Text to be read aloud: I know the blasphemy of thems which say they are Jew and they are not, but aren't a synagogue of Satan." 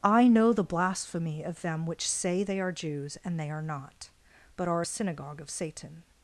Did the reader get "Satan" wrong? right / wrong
right